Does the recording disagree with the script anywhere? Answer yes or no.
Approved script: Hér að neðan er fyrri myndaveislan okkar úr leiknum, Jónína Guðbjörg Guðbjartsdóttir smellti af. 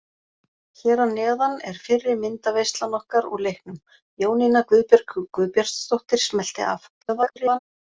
yes